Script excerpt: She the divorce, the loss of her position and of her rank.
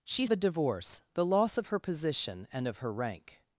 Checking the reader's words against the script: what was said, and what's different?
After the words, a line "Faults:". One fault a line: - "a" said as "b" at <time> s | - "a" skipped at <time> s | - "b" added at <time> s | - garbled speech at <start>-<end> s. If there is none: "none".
She the divorce, the loss of her position and of her rank.
Faults:
none